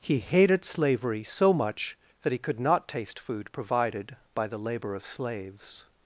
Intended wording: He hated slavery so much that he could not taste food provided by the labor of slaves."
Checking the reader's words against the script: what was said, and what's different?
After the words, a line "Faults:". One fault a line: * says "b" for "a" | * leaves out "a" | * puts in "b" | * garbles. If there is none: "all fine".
He hated slavery so much that he could not taste food provided by the labor of slaves."
Faults:
all fine